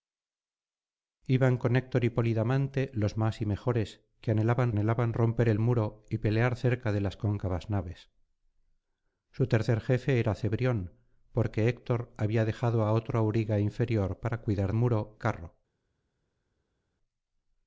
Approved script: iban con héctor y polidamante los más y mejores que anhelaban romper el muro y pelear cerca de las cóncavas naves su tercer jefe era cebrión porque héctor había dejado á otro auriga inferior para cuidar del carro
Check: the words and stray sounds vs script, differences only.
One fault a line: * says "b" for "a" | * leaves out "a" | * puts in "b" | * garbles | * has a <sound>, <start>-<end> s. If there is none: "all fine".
* puts in "anhelaban"
* says "muro" for "del"